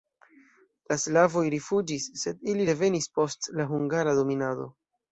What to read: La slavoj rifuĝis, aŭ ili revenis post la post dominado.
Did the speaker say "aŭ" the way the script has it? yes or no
no